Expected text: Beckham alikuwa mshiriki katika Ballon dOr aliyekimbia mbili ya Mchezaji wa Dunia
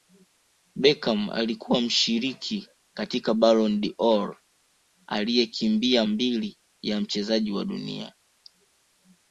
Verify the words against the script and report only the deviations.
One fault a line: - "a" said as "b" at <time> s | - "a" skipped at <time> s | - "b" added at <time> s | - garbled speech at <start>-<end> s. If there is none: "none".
none